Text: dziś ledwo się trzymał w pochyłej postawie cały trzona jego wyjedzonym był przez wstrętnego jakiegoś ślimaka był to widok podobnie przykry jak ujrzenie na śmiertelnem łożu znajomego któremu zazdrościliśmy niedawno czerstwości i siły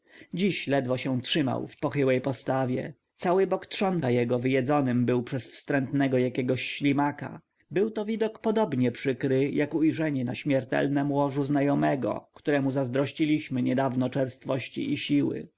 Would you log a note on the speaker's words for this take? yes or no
yes